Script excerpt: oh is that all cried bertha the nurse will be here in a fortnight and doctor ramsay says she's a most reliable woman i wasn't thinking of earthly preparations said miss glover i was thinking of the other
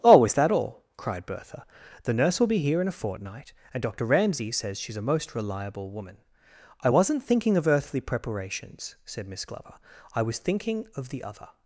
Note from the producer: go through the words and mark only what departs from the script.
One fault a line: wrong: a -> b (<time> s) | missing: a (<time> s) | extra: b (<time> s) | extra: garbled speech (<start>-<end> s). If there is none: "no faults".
no faults